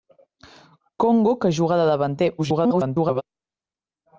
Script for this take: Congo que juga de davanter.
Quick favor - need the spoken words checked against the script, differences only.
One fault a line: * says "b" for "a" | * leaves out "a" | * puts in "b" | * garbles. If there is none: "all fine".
* garbles